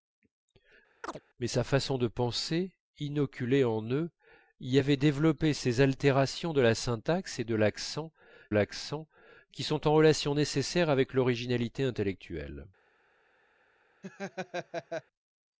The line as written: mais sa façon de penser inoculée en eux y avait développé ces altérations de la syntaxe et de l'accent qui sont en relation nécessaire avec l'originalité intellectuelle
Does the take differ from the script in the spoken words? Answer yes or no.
yes